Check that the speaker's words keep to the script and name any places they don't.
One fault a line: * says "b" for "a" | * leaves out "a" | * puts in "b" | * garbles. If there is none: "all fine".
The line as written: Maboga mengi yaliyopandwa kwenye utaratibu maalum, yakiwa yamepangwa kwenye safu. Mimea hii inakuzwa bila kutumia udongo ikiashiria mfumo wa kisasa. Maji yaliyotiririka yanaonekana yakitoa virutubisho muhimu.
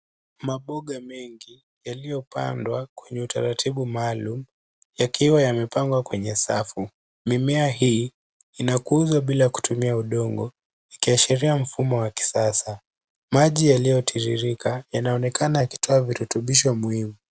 all fine